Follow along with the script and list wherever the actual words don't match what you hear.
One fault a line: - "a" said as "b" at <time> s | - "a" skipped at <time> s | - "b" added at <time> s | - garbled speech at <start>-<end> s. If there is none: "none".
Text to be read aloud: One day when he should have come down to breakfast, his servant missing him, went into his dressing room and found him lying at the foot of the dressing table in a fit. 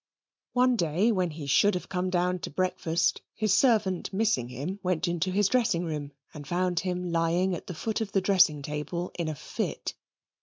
none